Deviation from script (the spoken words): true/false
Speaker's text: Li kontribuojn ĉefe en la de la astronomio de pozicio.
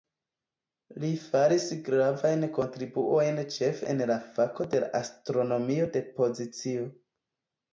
true